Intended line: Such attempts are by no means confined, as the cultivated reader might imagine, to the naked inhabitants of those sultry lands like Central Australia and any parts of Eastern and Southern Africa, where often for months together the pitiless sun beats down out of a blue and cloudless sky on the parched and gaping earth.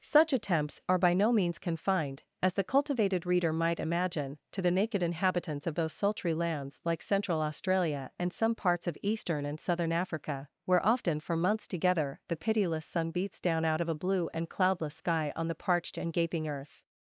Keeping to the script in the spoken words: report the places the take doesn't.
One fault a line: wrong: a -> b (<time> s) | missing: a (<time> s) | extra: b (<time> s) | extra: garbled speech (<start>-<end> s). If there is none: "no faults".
wrong: any -> some (8.3 s)